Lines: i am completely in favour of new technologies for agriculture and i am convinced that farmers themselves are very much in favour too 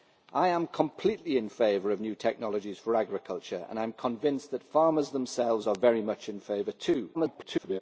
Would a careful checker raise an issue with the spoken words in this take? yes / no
yes